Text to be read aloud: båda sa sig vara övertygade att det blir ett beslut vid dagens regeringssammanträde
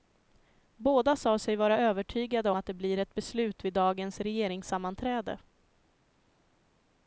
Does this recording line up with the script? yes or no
yes